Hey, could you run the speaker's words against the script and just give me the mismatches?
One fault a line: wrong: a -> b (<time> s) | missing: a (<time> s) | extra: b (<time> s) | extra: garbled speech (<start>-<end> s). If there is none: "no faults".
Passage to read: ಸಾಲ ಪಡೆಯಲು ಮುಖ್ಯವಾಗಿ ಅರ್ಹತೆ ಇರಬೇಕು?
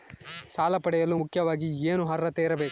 extra: ಏನು (1.9 s)